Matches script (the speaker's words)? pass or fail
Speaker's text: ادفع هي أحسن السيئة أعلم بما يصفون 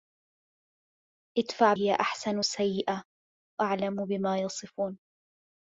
pass